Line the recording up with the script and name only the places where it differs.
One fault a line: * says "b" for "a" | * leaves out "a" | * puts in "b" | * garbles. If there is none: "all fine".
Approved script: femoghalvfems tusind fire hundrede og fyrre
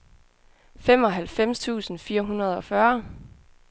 all fine